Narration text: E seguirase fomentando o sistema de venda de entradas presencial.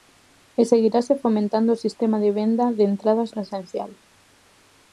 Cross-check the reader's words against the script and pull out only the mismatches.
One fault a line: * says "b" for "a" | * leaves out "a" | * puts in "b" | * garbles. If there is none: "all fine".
all fine